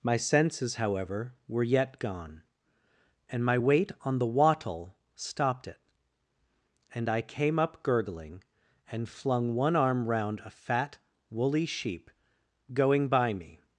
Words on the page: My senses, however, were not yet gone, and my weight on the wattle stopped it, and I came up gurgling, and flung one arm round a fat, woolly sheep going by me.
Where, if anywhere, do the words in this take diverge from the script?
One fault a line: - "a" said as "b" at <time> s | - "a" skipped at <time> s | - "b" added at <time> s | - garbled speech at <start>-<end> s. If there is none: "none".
- "not" skipped at 1.6 s